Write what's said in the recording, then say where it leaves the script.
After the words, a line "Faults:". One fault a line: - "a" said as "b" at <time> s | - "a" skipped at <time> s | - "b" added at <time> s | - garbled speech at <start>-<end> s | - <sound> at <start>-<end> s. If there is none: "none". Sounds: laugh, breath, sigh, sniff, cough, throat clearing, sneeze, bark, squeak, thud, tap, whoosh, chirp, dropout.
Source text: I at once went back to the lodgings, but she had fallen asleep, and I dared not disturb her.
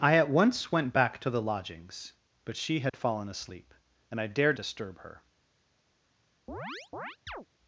I at once went back to the lodgings, but she had fallen asleep, and I dared disturb her.
Faults:
- dropout at 2.9-2.9 s
- "not" skipped at 4.6 s
- chirp at 6.5-7.5 s